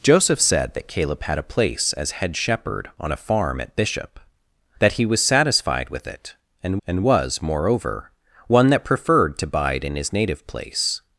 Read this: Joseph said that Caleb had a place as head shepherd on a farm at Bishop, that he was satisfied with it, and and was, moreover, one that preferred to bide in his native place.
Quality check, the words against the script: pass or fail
pass